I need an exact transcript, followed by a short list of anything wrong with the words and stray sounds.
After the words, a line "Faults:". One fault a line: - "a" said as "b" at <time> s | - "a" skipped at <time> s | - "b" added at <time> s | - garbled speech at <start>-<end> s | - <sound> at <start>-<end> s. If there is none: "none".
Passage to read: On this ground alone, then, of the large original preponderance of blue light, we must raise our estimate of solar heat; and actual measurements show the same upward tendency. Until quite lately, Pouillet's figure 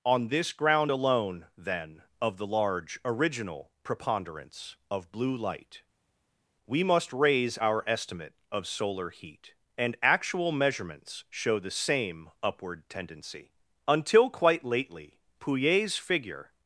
On this ground alone, then, of the large original preponderance of blue light, we must raise our estimate of solar heat; and actual measurements show the same upward tendency. Until quite lately, Pouillet's figure
Faults:
none